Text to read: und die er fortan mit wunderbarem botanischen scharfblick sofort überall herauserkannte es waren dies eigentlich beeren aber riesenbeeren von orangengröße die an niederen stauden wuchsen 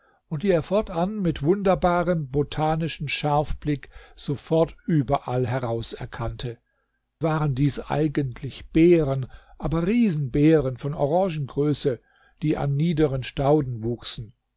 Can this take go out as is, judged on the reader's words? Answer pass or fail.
fail